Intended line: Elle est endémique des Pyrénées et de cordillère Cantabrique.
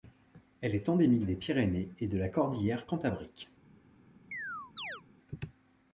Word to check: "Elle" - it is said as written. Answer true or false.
true